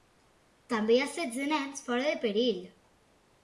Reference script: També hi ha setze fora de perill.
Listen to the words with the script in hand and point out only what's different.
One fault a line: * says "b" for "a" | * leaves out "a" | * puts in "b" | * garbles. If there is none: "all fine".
* puts in "nens"